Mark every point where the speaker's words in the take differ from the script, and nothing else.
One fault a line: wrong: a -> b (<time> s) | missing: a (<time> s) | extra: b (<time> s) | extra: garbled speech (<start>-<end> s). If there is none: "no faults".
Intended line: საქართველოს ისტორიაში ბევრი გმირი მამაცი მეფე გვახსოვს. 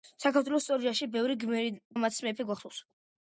no faults